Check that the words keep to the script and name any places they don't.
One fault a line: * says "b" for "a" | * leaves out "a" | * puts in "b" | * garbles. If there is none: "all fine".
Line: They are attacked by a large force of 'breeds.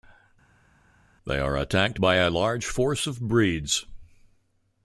all fine